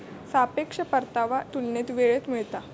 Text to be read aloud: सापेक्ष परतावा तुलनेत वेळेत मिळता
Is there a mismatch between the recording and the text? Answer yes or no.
no